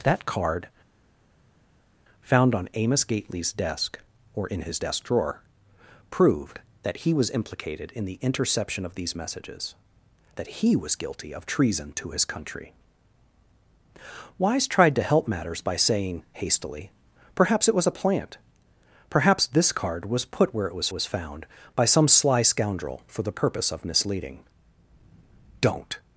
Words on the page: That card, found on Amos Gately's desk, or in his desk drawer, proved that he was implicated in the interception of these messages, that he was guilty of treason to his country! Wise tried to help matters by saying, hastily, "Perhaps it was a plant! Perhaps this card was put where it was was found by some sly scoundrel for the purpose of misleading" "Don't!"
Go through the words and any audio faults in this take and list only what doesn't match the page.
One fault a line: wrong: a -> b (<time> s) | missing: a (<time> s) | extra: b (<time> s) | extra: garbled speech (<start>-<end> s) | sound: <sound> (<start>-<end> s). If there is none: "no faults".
no faults